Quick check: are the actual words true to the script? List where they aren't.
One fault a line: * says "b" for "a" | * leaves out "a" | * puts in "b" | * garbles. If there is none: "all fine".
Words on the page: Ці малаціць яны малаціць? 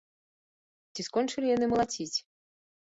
* says "скончылі" for "малаціць"